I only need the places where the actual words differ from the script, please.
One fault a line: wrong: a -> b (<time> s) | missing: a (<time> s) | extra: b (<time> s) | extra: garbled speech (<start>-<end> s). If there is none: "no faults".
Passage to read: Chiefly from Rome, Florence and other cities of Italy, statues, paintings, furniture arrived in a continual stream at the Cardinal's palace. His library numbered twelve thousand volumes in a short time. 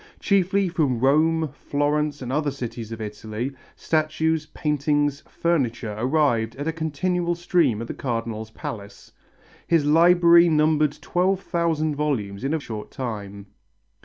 no faults